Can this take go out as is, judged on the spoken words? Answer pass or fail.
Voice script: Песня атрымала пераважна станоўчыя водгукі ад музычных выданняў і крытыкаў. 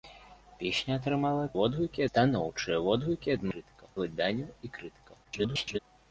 fail